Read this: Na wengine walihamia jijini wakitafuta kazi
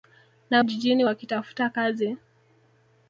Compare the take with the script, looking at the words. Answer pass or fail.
fail